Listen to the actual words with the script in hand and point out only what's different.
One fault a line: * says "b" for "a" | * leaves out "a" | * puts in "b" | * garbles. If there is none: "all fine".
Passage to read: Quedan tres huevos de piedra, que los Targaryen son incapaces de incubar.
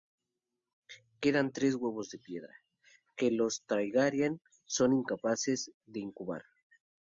all fine